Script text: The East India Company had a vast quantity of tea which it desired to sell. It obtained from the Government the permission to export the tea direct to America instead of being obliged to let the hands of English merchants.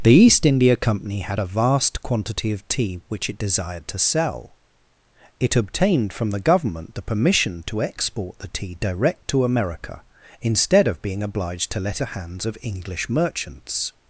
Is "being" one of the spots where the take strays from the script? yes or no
no